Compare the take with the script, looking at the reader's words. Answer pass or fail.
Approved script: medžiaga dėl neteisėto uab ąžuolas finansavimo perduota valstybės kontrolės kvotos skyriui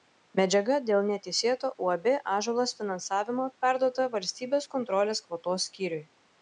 pass